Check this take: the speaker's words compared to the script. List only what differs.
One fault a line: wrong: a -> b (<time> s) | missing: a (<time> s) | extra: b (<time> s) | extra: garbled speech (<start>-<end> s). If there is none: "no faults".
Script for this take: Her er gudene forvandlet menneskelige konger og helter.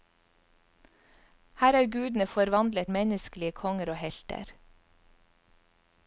no faults